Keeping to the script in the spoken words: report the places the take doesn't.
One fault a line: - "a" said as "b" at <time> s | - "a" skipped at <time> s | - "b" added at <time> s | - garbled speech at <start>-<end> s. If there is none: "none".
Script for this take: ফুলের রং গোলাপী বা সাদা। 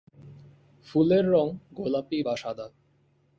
none